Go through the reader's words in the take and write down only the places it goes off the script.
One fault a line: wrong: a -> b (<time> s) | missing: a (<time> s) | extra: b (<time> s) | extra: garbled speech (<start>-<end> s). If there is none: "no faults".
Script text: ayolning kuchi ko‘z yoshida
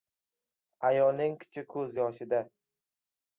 no faults